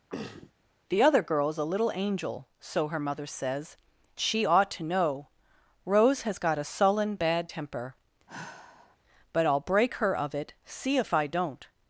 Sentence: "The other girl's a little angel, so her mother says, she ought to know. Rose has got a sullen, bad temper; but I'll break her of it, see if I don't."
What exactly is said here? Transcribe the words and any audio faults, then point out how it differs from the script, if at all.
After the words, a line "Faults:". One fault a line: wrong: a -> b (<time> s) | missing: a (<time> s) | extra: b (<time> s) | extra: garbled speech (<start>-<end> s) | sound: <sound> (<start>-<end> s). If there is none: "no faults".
"The other girl's a little angel, so her mother says, she ought to know. Rose has got a sullen, bad temper; but I'll break her of it, see if I don't."
Faults:
sound: throat clearing (0.1-0.5 s)
sound: sigh (8.3-9.0 s)